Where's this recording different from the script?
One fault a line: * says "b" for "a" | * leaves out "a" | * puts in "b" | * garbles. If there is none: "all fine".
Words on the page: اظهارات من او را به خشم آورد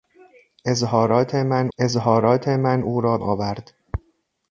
* puts in "اظهارات من"
* leaves out "به خشم"